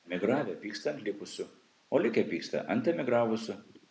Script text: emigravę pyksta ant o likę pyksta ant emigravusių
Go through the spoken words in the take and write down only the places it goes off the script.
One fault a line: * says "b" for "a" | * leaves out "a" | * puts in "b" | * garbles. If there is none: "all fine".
* puts in "likusių"